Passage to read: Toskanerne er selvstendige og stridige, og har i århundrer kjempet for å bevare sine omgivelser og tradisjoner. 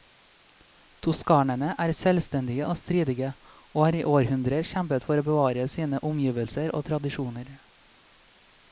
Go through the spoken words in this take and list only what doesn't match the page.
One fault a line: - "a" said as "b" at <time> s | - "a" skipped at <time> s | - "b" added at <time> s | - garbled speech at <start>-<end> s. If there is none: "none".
none